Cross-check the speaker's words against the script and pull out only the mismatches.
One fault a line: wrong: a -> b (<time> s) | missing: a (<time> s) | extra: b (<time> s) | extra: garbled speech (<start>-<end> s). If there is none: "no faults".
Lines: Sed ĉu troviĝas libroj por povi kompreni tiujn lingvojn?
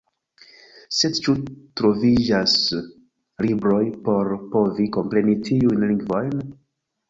no faults